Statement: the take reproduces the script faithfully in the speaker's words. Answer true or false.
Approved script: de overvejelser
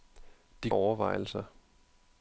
true